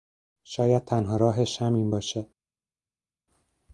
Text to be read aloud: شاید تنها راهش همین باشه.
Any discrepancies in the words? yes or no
no